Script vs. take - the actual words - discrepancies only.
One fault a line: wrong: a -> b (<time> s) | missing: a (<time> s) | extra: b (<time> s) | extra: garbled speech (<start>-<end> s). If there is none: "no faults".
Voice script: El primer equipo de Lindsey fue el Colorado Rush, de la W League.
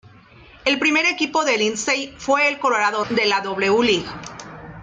missing: Rush (3.0 s)